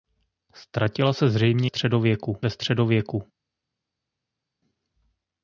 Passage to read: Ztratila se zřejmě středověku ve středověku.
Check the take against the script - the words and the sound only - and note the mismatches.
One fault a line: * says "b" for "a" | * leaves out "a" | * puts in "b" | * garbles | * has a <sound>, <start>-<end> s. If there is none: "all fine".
all fine